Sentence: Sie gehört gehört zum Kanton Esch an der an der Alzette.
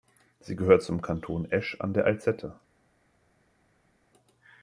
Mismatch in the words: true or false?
true